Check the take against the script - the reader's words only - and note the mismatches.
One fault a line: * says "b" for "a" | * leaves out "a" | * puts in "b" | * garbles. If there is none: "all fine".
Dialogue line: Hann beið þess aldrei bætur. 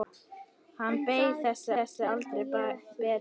* puts in "þess"